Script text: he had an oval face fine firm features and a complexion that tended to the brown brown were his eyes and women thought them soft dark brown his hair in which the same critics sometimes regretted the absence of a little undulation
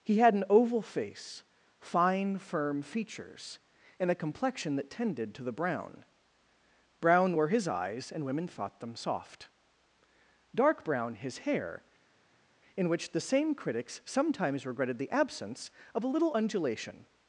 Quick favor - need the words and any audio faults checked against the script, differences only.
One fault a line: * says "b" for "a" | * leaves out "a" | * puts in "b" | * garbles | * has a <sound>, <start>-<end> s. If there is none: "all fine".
all fine